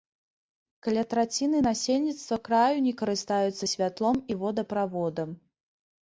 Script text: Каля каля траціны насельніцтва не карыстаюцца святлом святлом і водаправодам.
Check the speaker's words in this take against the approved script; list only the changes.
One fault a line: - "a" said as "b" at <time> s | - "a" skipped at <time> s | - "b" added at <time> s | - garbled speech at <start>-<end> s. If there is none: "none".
- "каля" skipped at 1.0 s
- "краю" added at 2.5 s
- "святлом" skipped at 4.2 s